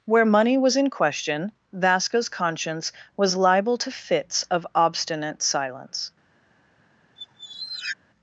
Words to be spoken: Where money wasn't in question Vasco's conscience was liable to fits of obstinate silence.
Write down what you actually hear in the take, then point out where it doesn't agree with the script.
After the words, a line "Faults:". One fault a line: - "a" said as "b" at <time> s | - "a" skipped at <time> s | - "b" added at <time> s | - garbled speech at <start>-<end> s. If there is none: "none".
Where money was in question Vasco's conscience was liable to fits of obstinate silence.
Faults:
- "wasn't" said as "was" at 0.6 s